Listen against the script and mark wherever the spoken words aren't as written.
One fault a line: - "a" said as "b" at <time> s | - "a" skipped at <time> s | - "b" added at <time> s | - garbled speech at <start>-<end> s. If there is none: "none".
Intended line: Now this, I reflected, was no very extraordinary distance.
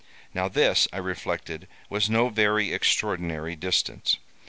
none